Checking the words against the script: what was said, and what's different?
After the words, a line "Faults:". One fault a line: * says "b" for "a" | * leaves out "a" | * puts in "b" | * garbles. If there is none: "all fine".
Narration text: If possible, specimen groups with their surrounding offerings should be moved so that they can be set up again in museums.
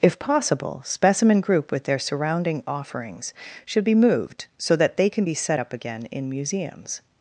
If possible, specimen group with their surrounding offerings should be moved so that they can be set up again in museums.
Faults:
* says "group" for "groups"